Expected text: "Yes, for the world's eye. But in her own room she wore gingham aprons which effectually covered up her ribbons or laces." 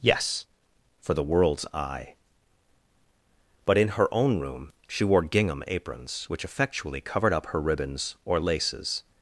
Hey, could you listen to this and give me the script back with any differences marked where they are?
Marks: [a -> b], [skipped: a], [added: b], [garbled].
"Yes, for the world's eye. But in her own room she wore gingham aprons which effectually covered up her ribbons or laces."